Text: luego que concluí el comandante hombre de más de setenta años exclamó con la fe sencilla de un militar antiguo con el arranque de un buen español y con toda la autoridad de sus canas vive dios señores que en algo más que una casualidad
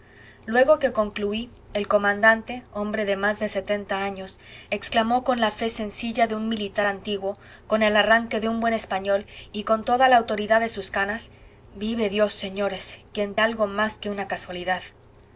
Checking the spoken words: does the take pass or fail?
pass